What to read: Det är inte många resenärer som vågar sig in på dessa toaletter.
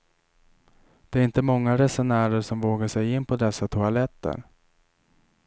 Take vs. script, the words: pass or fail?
pass